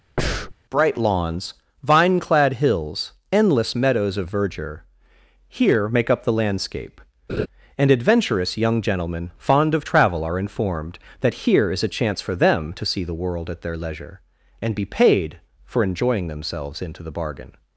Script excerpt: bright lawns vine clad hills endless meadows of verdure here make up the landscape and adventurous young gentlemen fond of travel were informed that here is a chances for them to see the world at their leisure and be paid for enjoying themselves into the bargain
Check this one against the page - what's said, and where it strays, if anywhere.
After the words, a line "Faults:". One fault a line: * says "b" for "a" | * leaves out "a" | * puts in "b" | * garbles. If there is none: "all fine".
bright lawns vine clad hills endless meadows of verdure here make up the landscape and adventurous young gentlemen fond of travel are informed that here is a chance for them to see the world at their leisure and be paid for enjoying themselves into the bargain
Faults:
* says "are" for "were"
* says "chance" for "chances"